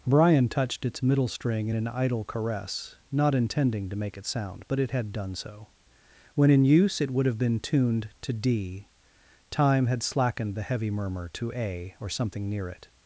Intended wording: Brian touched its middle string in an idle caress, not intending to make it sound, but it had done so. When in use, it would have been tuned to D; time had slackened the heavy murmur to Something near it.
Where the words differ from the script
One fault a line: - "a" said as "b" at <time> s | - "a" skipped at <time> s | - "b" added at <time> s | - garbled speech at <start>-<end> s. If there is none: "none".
- "A or" added at 11.5 s